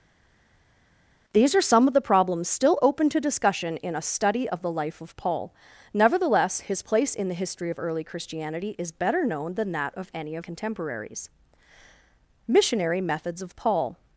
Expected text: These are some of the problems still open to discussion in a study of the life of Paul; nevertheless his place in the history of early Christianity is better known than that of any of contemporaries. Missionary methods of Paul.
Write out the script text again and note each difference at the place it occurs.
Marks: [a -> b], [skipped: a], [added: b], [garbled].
These are some of the problems still open to discussion in a study of the life of Paul; nevertheless his place in the history of early Christianity is better known than that of any of contemporaries. Missionary methods of Paul.